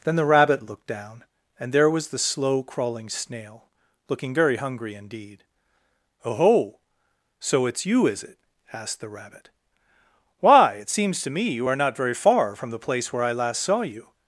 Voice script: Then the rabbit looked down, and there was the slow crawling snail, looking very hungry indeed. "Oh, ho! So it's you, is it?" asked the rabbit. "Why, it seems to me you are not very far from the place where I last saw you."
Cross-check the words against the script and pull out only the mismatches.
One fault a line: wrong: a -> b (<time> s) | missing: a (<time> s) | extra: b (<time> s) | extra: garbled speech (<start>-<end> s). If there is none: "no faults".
no faults